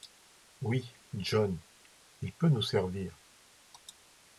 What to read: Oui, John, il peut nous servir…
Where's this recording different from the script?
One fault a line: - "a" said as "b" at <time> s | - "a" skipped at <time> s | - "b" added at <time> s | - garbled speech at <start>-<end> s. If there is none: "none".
none